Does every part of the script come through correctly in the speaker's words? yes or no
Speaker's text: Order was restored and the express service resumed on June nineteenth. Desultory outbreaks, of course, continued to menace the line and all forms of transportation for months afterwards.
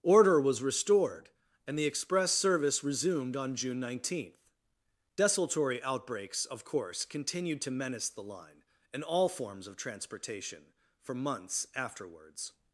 yes